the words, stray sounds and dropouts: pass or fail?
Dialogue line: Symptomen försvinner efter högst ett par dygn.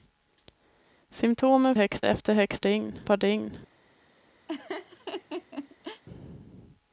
fail